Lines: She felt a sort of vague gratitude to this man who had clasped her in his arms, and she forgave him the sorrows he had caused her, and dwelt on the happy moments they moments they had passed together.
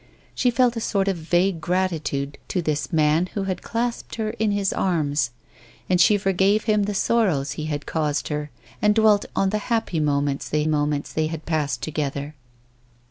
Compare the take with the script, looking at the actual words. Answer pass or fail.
pass